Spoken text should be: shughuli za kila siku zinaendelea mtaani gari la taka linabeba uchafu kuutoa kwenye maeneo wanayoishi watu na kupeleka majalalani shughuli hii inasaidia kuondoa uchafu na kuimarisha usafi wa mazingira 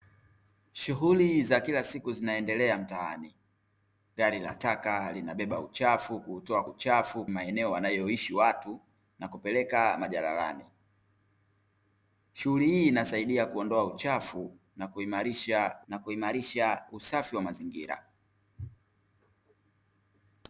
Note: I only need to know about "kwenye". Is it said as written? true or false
false